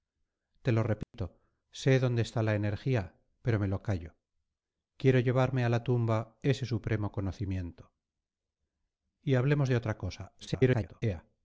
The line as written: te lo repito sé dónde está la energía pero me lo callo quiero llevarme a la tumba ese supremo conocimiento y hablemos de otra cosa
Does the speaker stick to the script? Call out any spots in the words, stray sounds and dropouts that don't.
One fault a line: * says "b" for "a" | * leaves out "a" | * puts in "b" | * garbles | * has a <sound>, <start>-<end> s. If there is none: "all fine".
* has a dropout, 1.0-1.1 s
* garbles